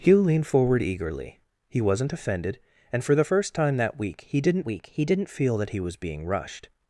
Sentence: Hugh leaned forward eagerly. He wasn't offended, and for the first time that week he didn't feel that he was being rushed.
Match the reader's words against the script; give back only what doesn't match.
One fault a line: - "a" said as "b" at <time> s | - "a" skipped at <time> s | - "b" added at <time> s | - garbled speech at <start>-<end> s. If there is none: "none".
- "week he didn't" added at 4.7 s